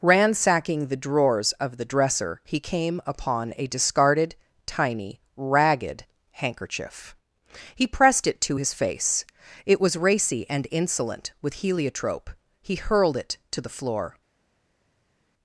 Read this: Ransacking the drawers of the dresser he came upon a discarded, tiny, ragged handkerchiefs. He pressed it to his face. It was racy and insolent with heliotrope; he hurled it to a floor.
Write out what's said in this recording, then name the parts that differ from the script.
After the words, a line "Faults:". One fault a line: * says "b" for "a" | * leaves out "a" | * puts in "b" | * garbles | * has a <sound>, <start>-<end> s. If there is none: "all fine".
Ransacking the drawers of the dresser he came upon a discarded, tiny, ragged handkerchief. He pressed it to his face. It was racy and insolent with heliotrope; he hurled it to the floor.
Faults:
* says "handkerchief" for "handkerchiefs"
* says "the" for "a"